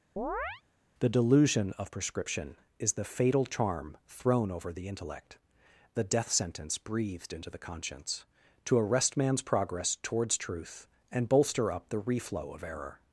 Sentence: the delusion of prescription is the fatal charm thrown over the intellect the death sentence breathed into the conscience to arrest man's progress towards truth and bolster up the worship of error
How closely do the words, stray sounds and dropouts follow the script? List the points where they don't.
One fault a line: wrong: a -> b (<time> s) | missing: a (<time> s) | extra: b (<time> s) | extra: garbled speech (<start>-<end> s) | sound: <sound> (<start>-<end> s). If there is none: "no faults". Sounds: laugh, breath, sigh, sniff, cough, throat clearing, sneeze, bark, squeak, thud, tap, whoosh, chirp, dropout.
sound: chirp (0.2-0.6 s)
wrong: worship -> reflow (12.0 s)